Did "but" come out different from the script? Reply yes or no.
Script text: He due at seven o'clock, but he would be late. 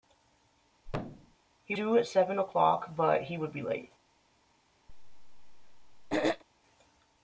no